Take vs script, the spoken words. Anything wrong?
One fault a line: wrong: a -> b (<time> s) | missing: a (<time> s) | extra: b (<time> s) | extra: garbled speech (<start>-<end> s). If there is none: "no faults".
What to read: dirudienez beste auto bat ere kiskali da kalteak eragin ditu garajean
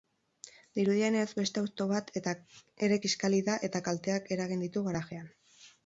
extra: eta (3.7 s)